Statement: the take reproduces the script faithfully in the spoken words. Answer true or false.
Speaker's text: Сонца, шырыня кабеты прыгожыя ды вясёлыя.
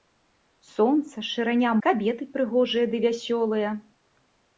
true